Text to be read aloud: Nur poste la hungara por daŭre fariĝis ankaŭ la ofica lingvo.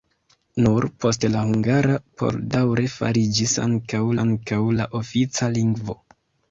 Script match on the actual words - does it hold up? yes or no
no